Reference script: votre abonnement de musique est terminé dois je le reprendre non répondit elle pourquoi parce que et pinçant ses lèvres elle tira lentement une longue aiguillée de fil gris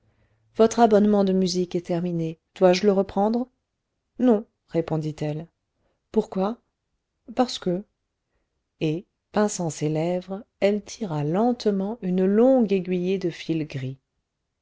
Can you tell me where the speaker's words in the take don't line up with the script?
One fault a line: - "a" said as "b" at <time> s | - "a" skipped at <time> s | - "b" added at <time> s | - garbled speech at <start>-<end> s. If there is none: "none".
none